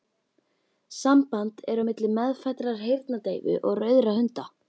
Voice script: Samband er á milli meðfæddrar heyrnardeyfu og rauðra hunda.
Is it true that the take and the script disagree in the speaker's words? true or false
false